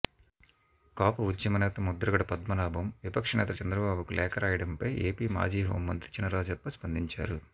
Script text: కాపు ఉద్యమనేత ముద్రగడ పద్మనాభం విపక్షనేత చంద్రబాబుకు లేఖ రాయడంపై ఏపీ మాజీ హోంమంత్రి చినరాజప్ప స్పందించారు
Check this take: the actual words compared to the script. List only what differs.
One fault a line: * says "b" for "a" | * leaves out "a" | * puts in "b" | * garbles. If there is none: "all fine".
all fine